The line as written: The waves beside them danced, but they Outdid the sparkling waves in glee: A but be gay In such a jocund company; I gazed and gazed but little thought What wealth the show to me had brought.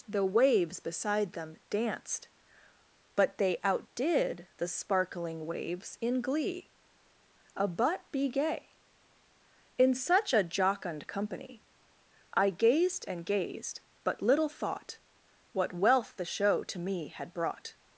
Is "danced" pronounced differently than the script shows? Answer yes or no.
no